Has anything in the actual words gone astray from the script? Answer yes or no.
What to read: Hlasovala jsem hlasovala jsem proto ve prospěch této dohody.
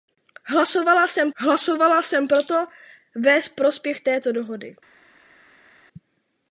no